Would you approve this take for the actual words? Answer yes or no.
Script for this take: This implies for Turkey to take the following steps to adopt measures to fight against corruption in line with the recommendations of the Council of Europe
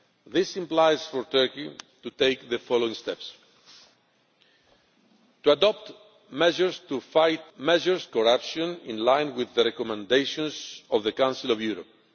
no